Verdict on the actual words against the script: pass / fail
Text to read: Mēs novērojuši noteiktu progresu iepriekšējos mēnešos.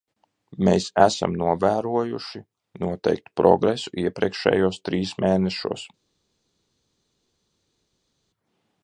fail